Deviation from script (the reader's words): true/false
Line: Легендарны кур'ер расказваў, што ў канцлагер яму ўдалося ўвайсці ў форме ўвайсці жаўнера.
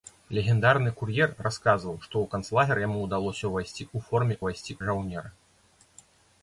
false